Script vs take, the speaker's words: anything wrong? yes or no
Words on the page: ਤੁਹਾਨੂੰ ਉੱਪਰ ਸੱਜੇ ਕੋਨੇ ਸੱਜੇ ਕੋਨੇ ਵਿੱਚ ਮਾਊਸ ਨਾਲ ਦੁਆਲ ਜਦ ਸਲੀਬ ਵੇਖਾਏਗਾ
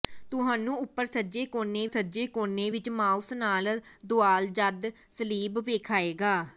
no